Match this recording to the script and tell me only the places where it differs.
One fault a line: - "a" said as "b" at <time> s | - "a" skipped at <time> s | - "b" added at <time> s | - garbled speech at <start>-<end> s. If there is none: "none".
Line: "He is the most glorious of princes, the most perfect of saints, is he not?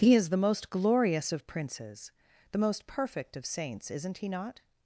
- "is" said as "isn't" at 3.9 s